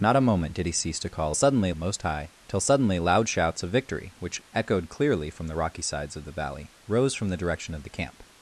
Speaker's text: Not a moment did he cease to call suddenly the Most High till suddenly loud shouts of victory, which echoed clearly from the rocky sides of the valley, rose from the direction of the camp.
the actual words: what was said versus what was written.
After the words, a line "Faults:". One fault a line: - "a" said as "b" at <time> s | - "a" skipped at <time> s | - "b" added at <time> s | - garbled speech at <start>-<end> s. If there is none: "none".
Not a moment did he cease to call suddenly the Most High till suddenly loud shouts of victory, which echoed clearly from the rocky sides of the valley, rose from the direction of the camp.
Faults:
none